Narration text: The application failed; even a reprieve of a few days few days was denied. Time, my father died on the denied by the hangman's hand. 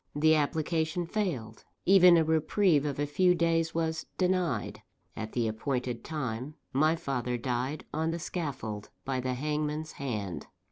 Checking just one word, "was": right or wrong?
wrong